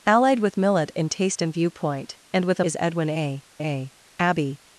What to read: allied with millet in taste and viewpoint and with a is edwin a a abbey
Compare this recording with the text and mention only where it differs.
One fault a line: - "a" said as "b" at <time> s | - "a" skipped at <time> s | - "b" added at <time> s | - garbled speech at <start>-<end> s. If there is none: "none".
none